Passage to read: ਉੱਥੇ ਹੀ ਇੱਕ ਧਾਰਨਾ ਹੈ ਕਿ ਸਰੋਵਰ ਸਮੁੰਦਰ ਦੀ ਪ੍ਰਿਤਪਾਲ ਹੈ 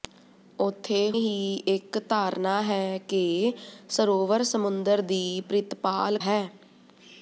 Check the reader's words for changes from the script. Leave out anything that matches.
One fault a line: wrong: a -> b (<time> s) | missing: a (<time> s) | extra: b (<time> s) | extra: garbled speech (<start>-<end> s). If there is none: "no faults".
no faults